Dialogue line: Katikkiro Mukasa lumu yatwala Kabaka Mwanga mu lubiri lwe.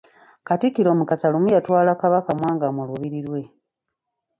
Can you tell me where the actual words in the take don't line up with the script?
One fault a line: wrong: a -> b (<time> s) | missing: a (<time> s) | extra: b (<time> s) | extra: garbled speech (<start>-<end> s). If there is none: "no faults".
no faults